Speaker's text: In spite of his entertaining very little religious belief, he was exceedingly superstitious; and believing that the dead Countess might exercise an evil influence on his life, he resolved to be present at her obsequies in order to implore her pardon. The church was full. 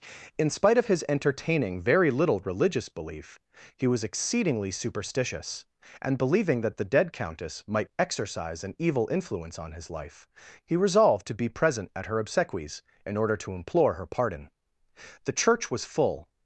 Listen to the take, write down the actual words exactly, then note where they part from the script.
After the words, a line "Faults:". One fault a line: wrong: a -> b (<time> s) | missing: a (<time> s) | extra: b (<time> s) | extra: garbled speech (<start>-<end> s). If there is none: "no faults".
In spite of his entertaining very little religious belief, he was exceedingly superstitious; and believing that the dead Countess might exercise an evil influence on his life, he resolved to be present at her obsequies in order to implore her pardon. The church was full.
Faults:
no faults